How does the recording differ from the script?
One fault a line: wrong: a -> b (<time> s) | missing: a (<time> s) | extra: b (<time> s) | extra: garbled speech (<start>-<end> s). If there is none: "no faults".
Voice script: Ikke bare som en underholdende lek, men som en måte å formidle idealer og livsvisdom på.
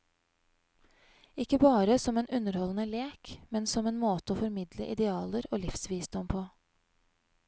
no faults